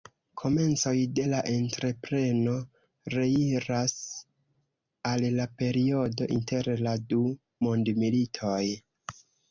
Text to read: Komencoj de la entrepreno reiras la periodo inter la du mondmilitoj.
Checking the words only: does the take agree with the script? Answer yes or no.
no